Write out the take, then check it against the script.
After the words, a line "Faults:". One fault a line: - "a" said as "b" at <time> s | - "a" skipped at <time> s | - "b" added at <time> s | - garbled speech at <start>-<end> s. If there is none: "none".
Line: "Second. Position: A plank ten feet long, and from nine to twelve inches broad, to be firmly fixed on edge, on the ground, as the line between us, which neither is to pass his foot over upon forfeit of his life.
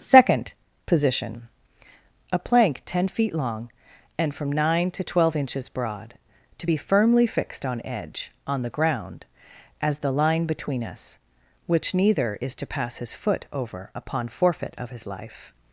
"Second. Position: A plank ten feet long, and from nine to twelve inches broad, to be firmly fixed on edge, on the ground, as the line between us, which neither is to pass his foot over upon forfeit of his life.
Faults:
none